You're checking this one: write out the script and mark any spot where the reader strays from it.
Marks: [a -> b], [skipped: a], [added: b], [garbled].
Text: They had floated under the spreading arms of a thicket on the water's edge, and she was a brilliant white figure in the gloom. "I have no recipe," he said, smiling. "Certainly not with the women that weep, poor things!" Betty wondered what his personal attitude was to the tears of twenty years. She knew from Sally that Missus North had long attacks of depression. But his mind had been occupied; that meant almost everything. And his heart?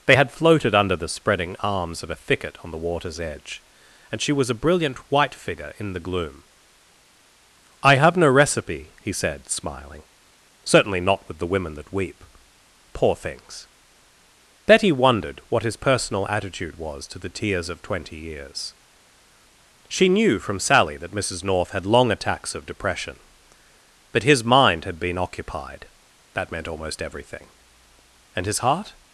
They had floated under the spreading arms of a thicket on the water's edge, and she was a brilliant white figure in the gloom. "I have no recipe," he said, smiling. "Certainly not with the women that weep, poor things!" Betty wondered what his personal attitude was to the tears of twenty years. She knew from Sally that Missus North had long attacks of depression. But his mind had been occupied; that meant almost everything. And his heart?